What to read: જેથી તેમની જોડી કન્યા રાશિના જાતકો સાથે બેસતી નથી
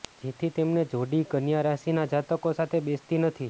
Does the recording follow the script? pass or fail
pass